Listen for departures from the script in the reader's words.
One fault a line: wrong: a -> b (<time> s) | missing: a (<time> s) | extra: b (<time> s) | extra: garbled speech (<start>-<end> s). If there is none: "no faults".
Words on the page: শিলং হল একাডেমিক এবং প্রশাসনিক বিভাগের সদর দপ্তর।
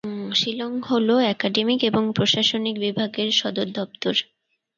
no faults